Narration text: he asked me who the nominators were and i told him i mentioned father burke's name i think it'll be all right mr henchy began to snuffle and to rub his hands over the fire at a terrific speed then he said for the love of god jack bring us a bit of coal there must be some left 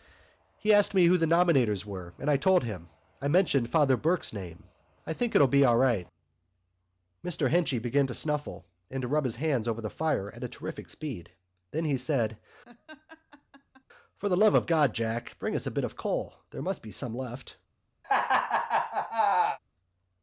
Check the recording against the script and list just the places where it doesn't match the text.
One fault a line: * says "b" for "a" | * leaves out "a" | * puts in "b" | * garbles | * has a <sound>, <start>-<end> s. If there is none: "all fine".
* has a laugh, 12.6-13.8 s
* has a laugh, 18.0-19.6 s